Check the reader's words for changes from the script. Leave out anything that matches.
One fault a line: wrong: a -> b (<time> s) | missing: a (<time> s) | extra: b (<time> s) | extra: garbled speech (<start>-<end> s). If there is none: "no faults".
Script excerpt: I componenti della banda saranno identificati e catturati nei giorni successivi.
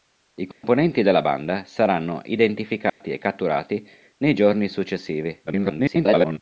extra: garbled speech (5.5-6.4 s)